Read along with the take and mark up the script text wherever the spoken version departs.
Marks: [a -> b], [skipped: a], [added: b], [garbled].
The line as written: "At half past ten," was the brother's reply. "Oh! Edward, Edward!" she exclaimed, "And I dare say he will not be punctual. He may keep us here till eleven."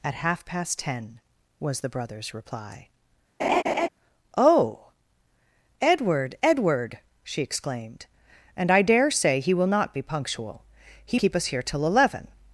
"At half past ten," was the brother's reply. "Oh! Edward, Edward!" she exclaimed, "And I dare say he will not be punctual. He [skipped: may] keep us here till eleven."